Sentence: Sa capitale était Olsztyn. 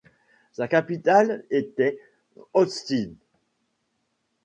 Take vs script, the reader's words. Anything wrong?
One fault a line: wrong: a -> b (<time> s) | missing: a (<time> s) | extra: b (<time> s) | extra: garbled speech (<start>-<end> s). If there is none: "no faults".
no faults